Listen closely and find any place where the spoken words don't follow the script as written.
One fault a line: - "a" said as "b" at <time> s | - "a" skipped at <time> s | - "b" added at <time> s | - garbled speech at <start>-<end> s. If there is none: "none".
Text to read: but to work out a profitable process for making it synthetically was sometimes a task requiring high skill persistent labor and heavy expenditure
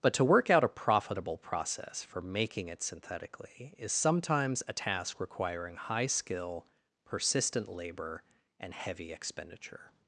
- "was" said as "is" at 3.8 s